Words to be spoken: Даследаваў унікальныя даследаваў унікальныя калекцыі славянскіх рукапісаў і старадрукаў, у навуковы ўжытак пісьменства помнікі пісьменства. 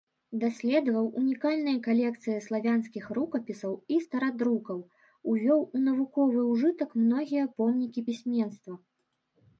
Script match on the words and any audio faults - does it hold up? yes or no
no